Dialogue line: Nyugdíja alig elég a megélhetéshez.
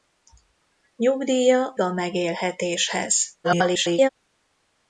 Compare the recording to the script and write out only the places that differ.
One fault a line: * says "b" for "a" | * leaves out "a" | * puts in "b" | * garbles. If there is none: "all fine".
* leaves out "alig elég"
* garbles